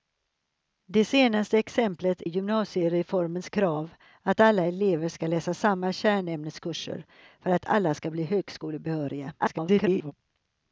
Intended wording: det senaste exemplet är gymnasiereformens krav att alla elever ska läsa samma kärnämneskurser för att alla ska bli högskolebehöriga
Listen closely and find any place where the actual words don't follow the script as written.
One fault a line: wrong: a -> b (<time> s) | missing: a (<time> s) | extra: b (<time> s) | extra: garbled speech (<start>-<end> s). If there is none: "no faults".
missing: är (2.2 s)
extra: garbled speech (9.4-10.1 s)